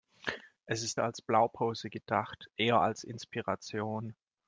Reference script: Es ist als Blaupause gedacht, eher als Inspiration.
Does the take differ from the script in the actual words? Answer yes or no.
no